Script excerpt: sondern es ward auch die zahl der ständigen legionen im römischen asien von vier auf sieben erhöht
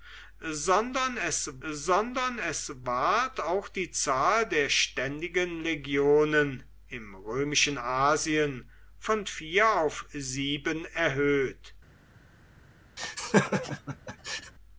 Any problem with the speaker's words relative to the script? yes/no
yes